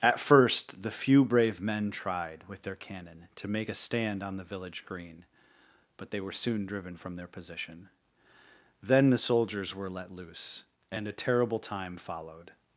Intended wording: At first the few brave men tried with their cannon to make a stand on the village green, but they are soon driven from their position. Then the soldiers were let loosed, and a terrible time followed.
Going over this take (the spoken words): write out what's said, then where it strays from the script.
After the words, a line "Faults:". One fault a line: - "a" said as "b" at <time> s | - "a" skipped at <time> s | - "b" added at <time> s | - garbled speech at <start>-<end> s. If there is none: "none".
At first the few brave men tried with their cannon to make a stand on the village green, but they were soon driven from their position. Then the soldiers were let loose, and a terrible time followed.
Faults:
- "are" said as "were" at 6.2 s
- "loosed" said as "loose" at 10.1 s